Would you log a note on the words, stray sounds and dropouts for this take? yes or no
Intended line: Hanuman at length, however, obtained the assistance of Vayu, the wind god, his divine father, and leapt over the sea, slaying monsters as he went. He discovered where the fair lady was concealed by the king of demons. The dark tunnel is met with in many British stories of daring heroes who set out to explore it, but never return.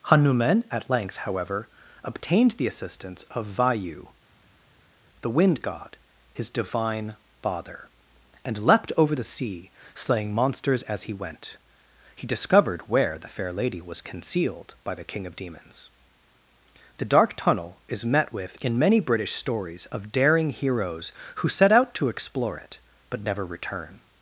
no